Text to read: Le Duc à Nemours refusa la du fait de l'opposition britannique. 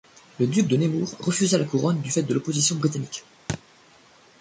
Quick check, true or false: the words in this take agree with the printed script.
false